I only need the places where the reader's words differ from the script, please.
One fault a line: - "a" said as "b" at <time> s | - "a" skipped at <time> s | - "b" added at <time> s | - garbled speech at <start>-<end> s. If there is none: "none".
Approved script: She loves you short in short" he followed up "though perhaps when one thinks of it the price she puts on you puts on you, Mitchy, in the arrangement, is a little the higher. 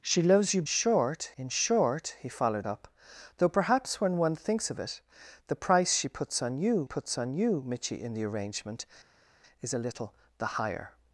none